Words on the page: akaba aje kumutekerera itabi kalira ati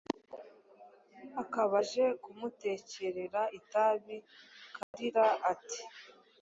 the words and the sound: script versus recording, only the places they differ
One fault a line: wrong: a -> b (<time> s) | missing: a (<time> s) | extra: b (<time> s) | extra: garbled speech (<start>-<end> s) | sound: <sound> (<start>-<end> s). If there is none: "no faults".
sound: dropout (4.8-4.9 s)